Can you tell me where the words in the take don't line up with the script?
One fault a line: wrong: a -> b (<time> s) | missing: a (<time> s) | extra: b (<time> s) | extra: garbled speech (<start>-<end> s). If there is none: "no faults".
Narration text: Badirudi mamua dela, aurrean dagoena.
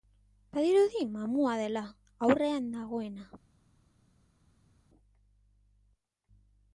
no faults